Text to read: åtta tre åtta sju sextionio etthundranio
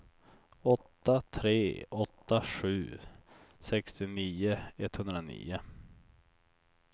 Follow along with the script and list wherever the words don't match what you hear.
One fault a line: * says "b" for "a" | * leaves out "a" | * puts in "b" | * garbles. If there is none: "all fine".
all fine